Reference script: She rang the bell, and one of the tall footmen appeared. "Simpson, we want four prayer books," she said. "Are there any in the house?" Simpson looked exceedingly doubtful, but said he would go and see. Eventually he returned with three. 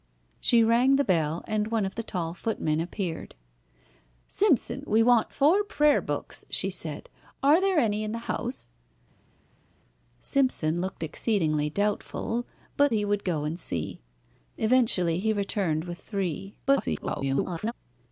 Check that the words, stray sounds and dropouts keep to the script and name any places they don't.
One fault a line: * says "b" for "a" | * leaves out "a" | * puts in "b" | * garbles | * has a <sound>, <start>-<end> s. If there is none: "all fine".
* leaves out "said"
* garbles